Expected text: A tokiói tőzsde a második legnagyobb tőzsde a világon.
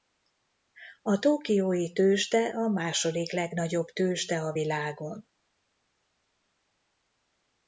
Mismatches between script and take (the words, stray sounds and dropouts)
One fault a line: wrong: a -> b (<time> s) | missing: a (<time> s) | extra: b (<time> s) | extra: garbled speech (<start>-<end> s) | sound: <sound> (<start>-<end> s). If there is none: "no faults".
no faults